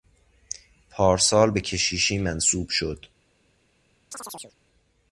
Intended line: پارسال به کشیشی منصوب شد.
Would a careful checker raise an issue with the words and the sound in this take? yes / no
yes